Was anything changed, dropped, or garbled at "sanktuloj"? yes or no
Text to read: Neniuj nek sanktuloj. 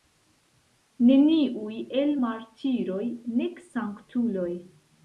no